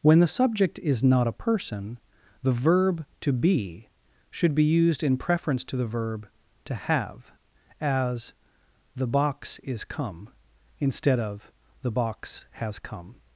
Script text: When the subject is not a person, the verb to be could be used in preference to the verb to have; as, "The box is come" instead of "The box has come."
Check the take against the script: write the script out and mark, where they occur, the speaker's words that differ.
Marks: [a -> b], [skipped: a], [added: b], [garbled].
When the subject is not a person, the verb to be [could -> should] be used in preference to the verb to have; as, "The box is come" instead of "The box has come."